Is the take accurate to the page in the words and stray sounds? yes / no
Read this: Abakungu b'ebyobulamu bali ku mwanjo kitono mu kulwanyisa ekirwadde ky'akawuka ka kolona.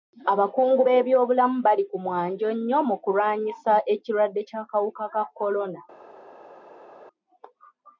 no